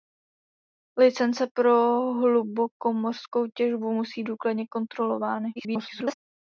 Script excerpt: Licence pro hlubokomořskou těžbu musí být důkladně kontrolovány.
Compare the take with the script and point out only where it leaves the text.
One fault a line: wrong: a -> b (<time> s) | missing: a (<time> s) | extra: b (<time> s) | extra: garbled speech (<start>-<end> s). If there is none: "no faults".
missing: být (4.2 s)
extra: garbled speech (5.6-6.1 s)